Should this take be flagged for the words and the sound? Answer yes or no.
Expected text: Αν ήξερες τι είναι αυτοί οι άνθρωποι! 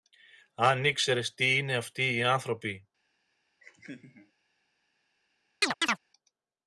yes